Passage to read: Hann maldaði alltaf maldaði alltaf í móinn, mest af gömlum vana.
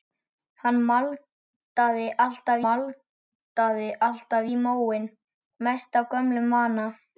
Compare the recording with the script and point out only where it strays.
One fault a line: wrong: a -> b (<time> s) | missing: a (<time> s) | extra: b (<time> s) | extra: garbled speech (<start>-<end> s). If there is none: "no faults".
no faults